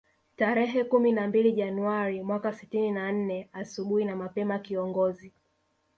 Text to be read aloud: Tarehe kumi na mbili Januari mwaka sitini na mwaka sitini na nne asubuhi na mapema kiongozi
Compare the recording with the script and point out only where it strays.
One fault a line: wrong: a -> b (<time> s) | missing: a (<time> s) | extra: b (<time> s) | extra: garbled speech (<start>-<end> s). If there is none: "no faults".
missing: mwaka sitini na (3.1 s)